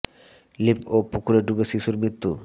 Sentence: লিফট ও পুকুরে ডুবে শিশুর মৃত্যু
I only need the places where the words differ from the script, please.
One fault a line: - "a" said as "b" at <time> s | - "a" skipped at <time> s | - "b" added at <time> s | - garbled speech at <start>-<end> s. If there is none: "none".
none